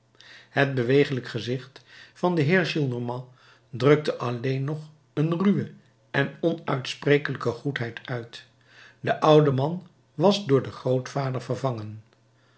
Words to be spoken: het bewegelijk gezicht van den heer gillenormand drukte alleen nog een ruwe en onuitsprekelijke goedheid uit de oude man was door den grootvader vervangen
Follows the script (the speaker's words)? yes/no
yes